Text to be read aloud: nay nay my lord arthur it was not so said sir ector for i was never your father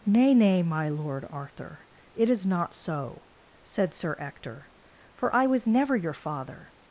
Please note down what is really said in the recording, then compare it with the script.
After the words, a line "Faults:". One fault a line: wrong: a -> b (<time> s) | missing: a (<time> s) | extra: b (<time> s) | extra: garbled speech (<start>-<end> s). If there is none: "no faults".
nay nay my lord arthur it is not so said sir ector for i was never your father
Faults:
wrong: was -> is (2.3 s)